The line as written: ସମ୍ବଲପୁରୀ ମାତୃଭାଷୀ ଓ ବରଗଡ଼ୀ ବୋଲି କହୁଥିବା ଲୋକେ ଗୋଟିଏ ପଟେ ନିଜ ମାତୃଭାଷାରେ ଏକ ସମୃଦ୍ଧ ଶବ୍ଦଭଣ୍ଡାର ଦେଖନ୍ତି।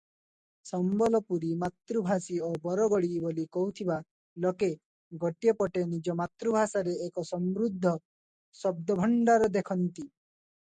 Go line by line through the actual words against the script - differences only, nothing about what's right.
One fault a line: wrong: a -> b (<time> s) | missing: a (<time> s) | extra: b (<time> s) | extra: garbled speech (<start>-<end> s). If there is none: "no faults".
no faults